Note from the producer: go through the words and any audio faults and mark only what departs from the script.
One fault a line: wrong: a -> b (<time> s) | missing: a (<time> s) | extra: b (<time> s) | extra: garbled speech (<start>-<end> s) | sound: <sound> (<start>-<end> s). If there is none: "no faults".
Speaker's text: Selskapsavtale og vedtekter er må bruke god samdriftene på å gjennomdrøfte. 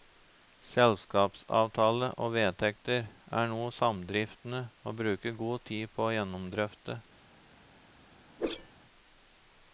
extra: noe samdriftene (3.5 s)
wrong: samdriftene -> tid (5.7 s)
sound: whoosh (8.4-8.7 s)